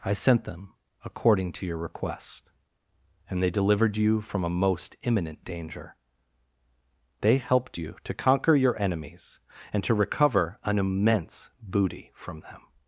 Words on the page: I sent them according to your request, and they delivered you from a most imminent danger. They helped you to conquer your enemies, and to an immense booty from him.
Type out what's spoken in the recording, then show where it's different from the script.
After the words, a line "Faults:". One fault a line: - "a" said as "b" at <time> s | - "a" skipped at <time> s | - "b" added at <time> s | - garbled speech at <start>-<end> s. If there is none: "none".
I sent them according to your request, and they delivered you from a most imminent danger. They helped you to conquer your enemies, and to recover an immense booty from them.
Faults:
- "recover" added at 9.9 s
- "him" said as "them" at 12.4 s